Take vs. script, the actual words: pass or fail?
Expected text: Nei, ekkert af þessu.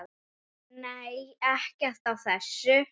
pass